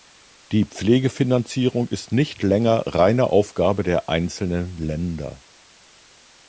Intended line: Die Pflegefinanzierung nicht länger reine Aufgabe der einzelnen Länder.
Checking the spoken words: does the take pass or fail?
fail